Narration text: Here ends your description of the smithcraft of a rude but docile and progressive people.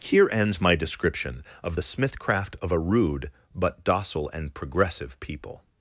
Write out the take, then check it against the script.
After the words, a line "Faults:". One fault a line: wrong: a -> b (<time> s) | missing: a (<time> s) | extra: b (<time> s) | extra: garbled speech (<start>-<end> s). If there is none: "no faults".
Here ends my description of the smithcraft of a rude but docile and progressive people.
Faults:
wrong: your -> my (0.6 s)